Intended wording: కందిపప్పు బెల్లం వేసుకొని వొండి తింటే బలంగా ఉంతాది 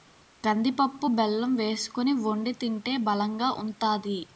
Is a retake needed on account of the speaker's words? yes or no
no